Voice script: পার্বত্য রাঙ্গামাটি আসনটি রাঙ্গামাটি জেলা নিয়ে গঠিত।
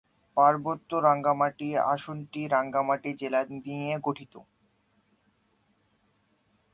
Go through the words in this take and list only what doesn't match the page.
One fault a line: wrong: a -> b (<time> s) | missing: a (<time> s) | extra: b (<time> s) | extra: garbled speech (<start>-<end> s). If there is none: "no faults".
no faults